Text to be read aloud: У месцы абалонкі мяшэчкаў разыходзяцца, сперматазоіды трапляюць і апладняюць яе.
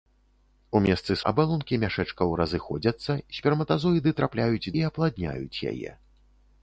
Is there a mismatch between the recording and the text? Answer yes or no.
no